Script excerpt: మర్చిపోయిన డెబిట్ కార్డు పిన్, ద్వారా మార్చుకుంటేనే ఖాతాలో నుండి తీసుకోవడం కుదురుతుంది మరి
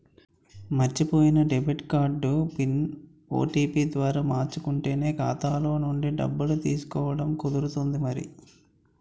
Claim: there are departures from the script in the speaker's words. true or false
true